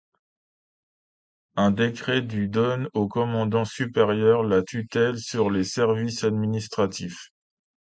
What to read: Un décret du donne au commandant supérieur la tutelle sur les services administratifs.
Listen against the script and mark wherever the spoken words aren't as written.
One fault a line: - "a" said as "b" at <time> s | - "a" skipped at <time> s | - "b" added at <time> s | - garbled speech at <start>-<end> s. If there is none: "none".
none